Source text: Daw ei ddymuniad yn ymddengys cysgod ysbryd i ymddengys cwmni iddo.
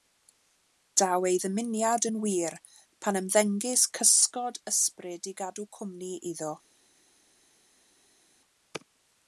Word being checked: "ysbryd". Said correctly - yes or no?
yes